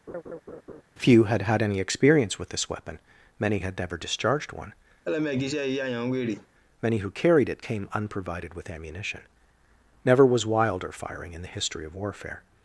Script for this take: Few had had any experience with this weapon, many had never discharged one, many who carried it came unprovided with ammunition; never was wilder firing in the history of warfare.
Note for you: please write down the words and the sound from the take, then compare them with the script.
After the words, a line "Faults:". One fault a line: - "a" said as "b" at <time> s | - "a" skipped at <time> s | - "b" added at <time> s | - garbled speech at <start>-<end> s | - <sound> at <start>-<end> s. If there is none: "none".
Few had had any experience with this weapon, many had never discharged one, many who carried it came unprovided with ammunition; never was wilder firing in the history of warfare.
Faults:
- laugh at 0.1-0.8 s
- laugh at 5.0-6.5 s